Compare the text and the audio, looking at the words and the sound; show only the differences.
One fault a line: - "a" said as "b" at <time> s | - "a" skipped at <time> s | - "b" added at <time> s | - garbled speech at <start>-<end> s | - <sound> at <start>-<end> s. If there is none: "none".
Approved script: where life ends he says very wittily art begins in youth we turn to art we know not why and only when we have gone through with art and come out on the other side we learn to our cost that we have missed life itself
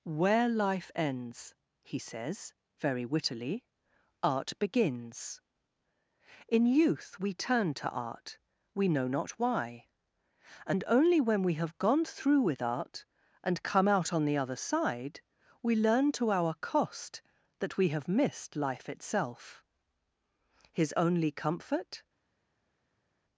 - "his only comfort" added at 20.7 s